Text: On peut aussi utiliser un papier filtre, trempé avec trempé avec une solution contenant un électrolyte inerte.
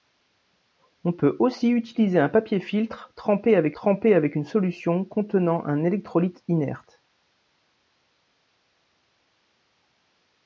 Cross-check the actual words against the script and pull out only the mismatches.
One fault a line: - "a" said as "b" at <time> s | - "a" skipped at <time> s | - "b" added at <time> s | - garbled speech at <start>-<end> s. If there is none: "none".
none